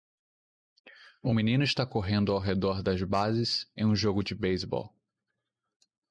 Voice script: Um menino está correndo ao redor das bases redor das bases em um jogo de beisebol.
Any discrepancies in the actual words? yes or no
yes